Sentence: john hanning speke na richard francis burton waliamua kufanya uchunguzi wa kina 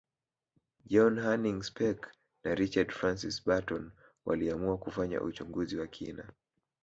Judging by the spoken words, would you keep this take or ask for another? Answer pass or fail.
pass